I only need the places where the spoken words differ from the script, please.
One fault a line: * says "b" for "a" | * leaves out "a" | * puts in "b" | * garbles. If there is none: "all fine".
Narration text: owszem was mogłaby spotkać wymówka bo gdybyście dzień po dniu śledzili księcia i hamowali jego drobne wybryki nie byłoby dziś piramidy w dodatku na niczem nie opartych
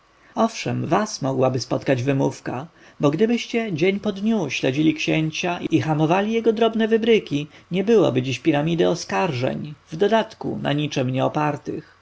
* puts in "oskarżeń"